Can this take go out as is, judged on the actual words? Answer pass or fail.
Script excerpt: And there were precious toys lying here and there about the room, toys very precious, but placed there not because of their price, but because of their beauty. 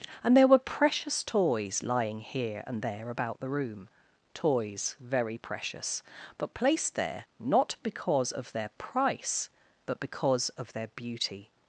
pass